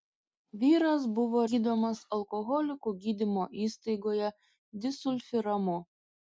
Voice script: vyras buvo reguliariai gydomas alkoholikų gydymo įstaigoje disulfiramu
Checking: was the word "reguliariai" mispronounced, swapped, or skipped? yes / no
yes